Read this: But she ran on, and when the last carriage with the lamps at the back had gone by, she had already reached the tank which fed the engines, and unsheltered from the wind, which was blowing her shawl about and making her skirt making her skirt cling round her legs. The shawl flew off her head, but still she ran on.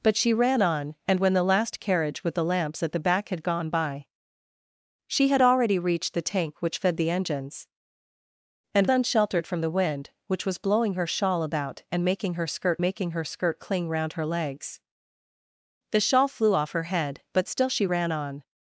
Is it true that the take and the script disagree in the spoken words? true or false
false